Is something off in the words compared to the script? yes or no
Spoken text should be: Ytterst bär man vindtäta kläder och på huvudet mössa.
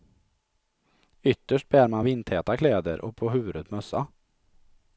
no